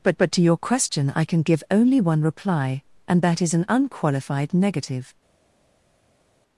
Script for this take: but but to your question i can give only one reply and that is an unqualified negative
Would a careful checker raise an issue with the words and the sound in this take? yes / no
no